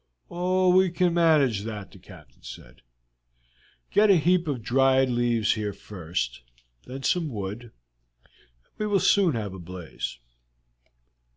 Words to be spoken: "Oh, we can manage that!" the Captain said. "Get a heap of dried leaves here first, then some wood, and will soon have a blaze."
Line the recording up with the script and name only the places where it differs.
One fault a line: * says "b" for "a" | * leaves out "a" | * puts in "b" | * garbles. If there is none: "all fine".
* puts in "we"